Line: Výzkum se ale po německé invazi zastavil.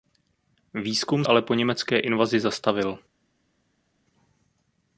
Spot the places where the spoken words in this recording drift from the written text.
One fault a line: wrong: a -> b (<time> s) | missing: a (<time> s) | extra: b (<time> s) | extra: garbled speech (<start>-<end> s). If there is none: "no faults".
missing: se (1.2 s)